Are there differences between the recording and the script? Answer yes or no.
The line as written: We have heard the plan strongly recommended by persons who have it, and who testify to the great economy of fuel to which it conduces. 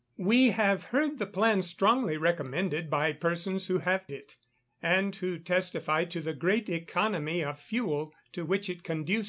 no